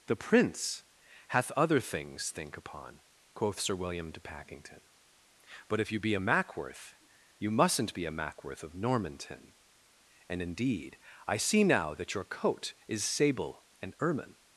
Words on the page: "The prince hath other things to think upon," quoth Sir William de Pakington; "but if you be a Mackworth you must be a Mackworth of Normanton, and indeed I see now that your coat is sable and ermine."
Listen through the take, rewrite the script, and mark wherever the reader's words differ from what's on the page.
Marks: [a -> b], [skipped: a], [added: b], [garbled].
"The prince hath other things [skipped: to] think upon," quoth Sir William de Pakington; "but if you be a Mackworth you [must -> mustn't] be a Mackworth of Normanton, and indeed I see now that your coat is sable and ermine."